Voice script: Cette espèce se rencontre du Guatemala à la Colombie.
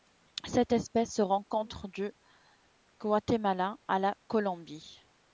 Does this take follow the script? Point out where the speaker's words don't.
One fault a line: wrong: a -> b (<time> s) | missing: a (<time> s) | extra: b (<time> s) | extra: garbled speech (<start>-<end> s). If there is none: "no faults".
no faults